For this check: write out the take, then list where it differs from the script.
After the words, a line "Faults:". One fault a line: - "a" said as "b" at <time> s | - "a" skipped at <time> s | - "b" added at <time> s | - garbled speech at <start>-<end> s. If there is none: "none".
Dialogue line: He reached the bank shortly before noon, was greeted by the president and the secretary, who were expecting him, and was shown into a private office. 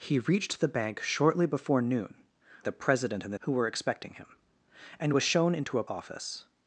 He reached the bank shortly before noon, the president and the who were expecting him, and was shown into a office.
Faults:
- "was greeted by" skipped at 2.1 s
- "secretary" skipped at 3.4 s
- "private" skipped at 5.9 s